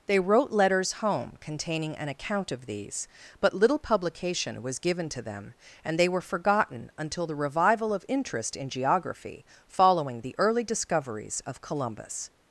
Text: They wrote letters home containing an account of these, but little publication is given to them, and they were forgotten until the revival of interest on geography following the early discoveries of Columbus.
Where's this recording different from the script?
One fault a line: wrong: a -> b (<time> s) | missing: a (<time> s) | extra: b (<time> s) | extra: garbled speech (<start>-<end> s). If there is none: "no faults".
wrong: is -> was (4.6 s)
wrong: on -> in (8.6 s)